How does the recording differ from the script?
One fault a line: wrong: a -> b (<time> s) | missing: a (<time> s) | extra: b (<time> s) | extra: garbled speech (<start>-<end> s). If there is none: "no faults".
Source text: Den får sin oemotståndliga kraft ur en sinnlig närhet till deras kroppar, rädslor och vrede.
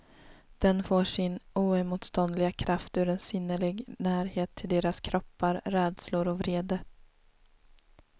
no faults